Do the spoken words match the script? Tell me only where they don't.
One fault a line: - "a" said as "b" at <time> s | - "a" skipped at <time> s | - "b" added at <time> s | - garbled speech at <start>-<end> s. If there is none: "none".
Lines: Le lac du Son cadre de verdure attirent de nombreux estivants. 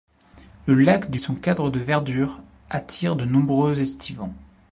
none